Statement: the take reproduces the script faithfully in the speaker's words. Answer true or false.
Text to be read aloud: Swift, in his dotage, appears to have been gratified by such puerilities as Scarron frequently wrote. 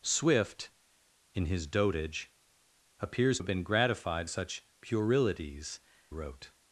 false